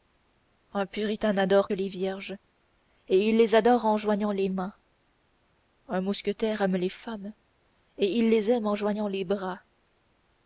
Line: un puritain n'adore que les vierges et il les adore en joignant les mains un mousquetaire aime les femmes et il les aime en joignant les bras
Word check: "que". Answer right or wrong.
wrong